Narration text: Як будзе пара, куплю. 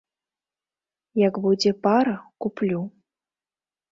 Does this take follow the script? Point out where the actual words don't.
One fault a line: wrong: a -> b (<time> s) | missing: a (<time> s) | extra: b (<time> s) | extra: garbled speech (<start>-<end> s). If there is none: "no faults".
no faults